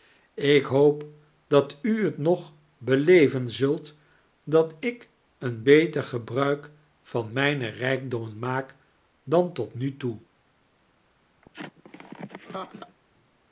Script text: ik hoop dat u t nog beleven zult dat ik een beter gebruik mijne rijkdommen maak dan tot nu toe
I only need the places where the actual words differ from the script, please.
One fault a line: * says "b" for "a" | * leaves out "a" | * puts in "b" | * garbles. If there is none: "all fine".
* puts in "van"